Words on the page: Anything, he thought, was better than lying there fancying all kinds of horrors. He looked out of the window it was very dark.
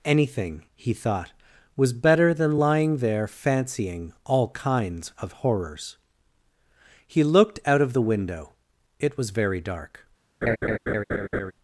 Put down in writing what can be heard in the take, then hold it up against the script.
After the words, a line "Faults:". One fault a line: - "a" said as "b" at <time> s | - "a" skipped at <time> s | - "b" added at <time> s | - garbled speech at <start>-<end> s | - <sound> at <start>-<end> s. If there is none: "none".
Anything, he thought, was better than lying there fancying all kinds of horrors. He looked out of the window it was very dark.
Faults:
- laugh at 10.4-11.5 s